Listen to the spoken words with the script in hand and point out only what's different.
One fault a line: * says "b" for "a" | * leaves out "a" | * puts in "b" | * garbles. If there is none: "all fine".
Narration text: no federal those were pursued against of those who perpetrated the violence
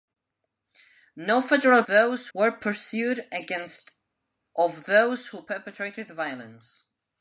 all fine